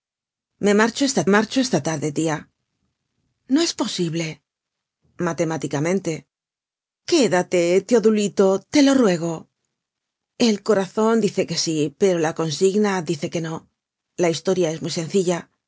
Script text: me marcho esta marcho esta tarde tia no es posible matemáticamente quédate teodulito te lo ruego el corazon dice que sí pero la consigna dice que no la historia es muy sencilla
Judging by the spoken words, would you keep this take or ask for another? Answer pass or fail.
pass